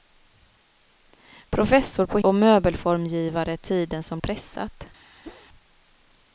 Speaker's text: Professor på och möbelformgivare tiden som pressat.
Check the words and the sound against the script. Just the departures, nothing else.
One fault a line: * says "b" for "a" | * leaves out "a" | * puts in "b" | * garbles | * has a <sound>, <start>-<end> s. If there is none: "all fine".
* has a whoosh, 5.2-5.5 s